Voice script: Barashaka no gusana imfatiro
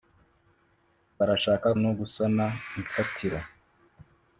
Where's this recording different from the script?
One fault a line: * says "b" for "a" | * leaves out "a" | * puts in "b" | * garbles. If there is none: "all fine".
all fine